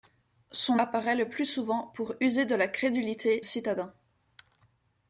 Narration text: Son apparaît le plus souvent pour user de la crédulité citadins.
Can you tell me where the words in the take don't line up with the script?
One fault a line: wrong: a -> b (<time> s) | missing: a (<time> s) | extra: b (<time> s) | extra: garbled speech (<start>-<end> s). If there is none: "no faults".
no faults